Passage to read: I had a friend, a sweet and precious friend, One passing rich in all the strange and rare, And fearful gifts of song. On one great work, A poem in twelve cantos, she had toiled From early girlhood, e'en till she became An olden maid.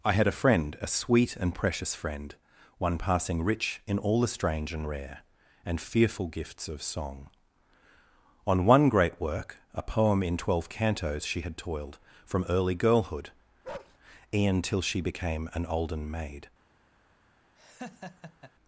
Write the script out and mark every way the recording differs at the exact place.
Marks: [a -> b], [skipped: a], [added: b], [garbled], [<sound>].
I had a friend, a sweet and precious friend, One passing rich in all the strange and rare, And fearful gifts of song. On one great work, A poem in twelve cantos, she had toiled From early girlhood, [bark] e'en till she became An olden maid. [laugh]